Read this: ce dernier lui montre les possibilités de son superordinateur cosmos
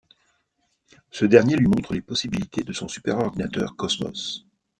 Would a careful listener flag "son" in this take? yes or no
no